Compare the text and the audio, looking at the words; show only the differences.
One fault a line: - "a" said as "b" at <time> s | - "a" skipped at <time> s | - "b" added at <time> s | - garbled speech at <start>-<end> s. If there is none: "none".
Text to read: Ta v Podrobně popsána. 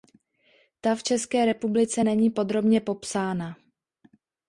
- "České republice není" added at 1.0 s